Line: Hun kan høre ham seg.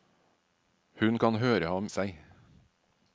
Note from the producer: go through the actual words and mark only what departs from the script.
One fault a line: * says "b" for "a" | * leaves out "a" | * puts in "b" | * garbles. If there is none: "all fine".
all fine